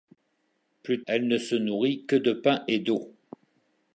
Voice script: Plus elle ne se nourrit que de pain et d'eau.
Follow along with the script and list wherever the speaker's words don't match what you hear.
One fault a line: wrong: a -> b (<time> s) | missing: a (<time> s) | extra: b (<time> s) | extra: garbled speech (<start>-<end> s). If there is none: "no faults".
no faults